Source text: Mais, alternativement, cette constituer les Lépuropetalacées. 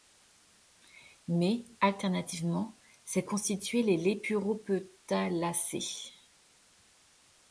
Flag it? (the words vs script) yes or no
no